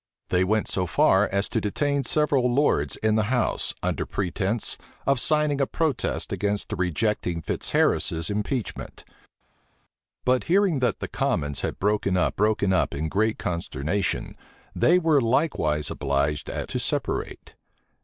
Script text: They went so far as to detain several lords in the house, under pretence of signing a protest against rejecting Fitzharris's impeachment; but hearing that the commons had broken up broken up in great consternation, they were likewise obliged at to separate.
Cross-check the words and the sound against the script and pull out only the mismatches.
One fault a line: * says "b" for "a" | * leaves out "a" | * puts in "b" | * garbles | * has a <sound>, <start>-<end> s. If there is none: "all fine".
all fine